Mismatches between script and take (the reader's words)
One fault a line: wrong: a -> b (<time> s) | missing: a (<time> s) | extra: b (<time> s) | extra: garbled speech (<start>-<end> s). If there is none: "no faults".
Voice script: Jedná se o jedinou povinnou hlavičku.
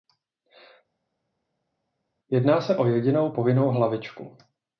no faults